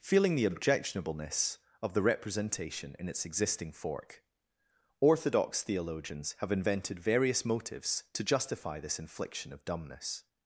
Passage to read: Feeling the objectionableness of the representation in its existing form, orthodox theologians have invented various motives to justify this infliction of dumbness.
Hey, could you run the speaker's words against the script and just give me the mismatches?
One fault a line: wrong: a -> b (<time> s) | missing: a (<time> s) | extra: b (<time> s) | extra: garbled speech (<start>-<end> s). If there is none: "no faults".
wrong: form -> fork (3.7 s)